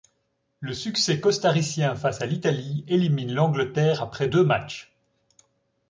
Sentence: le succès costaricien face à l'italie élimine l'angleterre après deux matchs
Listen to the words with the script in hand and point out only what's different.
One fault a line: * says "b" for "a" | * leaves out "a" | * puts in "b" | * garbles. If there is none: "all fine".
all fine